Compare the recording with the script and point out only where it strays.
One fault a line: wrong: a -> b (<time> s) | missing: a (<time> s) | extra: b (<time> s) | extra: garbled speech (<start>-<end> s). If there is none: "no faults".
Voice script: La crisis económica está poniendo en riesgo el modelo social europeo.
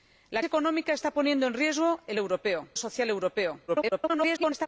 missing: crisis (0.4 s)
wrong: modelo -> europeo (2.2 s)
extra: garbled speech (3.7-4.7 s)